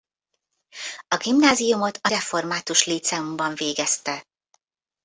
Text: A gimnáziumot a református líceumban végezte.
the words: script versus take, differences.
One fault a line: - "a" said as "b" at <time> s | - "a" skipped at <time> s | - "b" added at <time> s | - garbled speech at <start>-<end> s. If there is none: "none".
none